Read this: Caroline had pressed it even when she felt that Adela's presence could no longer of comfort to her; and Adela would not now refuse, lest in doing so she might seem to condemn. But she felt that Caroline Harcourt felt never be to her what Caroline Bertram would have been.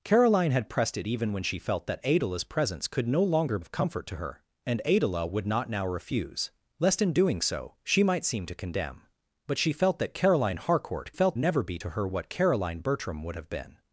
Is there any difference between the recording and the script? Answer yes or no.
no